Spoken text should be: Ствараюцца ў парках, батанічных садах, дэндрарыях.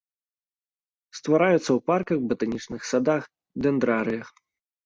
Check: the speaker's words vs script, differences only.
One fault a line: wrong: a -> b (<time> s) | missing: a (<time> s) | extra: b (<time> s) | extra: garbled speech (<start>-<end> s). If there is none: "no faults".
no faults